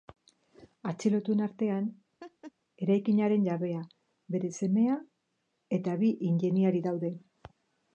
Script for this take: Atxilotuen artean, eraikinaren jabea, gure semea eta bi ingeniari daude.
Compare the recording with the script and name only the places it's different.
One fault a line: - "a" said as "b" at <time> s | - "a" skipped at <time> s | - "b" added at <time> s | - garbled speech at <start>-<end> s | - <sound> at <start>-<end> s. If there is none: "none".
- laugh at 2.2-2.5 s
- "gure" said as "bere" at 4.4 s